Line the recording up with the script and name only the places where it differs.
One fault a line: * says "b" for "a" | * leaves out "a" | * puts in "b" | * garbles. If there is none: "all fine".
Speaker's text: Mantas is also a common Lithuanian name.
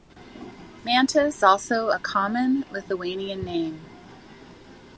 * leaves out "is"